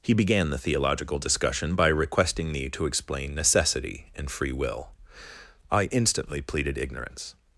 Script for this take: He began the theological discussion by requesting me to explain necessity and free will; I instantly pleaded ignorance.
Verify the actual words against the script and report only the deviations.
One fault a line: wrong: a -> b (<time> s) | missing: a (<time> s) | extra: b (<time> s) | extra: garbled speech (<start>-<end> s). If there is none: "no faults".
no faults